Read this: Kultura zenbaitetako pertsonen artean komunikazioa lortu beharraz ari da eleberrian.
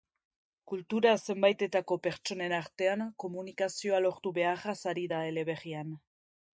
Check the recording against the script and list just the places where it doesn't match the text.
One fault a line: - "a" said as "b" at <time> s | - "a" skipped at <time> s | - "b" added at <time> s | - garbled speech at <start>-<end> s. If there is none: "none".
none